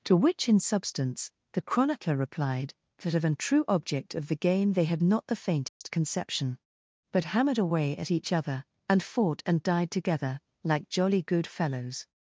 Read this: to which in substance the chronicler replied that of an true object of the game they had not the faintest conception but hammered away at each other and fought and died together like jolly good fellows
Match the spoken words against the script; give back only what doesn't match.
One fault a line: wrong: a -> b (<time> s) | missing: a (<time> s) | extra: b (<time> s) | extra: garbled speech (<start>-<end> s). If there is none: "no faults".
no faults